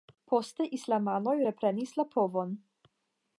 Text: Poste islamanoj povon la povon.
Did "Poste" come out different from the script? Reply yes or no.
no